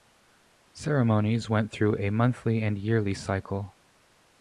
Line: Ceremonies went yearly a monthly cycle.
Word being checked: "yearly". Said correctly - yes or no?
no